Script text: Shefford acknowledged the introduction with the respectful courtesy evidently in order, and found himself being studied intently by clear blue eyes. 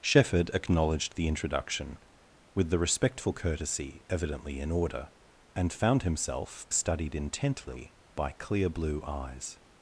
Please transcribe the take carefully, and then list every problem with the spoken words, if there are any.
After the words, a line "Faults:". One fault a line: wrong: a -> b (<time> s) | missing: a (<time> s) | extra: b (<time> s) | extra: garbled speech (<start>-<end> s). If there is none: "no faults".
Shefford acknowledged the introduction with the respectful courtesy evidently in order, and found himself studied intently by clear blue eyes.
Faults:
missing: being (6.7 s)